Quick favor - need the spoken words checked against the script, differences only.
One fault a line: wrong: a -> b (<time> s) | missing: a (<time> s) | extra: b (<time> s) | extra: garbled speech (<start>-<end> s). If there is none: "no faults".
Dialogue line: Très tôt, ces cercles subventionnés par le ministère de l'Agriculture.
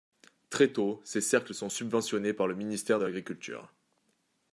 extra: sont (1.5 s)